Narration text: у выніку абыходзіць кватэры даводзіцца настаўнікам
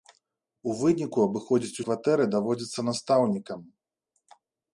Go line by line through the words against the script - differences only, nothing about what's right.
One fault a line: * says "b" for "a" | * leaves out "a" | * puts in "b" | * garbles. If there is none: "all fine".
all fine